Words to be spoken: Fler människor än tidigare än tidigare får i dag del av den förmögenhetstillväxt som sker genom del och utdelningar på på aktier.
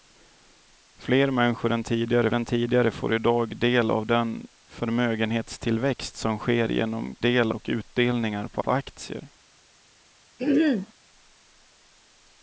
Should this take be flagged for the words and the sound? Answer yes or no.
yes